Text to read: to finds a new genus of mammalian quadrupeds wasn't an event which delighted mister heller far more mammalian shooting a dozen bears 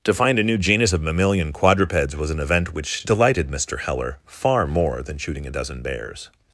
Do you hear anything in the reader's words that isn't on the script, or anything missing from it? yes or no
yes